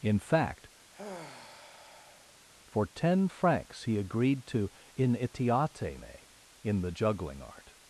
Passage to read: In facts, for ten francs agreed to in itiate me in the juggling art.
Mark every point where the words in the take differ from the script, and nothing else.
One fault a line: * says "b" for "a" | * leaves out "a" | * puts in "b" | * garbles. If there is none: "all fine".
* says "fact" for "facts"
* puts in "he"